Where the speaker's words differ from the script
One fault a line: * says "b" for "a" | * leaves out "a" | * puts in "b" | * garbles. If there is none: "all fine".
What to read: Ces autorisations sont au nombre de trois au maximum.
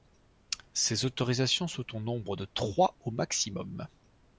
all fine